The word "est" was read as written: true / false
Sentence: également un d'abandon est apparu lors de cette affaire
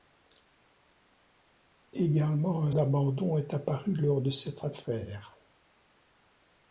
true